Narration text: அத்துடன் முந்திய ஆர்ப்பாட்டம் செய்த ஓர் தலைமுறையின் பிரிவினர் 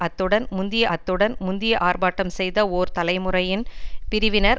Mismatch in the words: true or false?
true